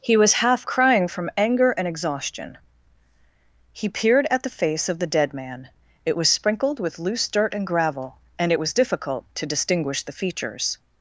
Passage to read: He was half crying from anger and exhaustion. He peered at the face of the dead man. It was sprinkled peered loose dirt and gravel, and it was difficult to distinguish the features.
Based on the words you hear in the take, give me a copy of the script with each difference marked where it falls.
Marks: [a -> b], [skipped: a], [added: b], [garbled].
He was half crying from anger and exhaustion. He peered at the face of the dead man. It was sprinkled [peered -> with] loose dirt and gravel, and it was difficult to distinguish the features.